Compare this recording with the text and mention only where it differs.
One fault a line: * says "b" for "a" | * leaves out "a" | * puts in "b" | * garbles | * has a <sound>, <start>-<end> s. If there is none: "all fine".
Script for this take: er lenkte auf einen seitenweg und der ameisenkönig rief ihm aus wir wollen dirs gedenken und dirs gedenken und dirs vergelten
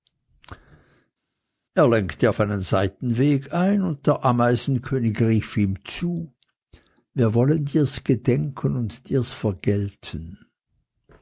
* puts in "ein"
* says "zu" for "aus"
* leaves out "gedenken und dirs"